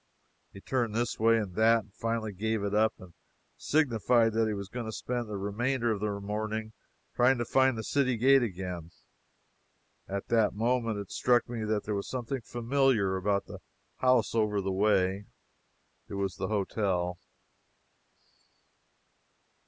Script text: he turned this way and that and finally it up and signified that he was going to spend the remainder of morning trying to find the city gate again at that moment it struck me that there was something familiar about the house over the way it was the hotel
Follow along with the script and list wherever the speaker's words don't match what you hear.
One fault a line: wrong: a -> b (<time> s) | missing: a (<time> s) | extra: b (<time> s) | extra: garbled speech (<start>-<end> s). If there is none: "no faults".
extra: gave (2.3 s)
extra: the (6.0 s)